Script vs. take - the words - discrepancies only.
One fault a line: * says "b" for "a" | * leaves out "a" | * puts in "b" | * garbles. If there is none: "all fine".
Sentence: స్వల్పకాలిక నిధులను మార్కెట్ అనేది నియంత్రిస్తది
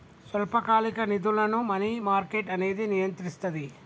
* puts in "మనీ"